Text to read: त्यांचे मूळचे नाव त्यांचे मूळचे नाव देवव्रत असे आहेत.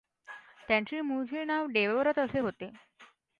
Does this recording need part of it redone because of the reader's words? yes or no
yes